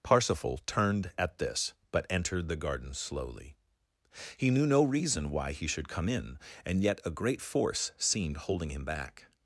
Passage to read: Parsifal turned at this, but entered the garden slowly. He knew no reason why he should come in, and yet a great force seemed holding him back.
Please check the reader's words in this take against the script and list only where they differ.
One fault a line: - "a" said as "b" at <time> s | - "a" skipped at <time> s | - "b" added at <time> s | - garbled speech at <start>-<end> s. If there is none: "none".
none